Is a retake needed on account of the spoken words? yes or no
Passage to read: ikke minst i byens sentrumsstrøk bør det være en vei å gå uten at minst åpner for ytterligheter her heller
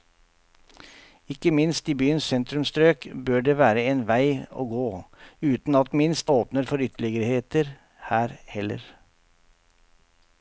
no